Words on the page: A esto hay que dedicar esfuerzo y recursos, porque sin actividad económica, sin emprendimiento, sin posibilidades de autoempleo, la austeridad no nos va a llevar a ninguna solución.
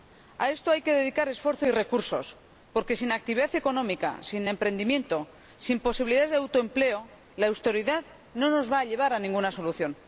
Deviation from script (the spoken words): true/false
false